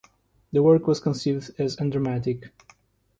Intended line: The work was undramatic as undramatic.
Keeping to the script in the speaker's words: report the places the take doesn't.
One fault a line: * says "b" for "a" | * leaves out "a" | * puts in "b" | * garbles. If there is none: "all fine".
* says "conceived" for "undramatic"